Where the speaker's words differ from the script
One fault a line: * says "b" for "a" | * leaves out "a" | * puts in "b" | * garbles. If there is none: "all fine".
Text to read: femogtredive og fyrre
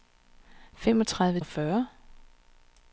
all fine